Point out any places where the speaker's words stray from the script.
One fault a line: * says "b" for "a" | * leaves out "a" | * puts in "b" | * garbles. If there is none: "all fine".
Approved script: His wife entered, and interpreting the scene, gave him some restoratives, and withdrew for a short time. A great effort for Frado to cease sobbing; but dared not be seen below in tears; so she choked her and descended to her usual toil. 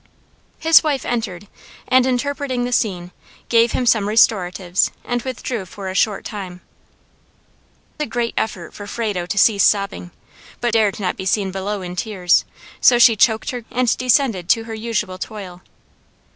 all fine